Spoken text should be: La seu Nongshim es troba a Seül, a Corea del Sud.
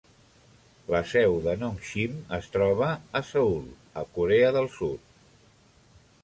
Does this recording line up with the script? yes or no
no